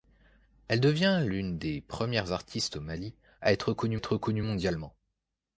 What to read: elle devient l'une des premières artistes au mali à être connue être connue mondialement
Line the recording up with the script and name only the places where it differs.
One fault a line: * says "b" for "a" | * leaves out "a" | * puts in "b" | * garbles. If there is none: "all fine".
all fine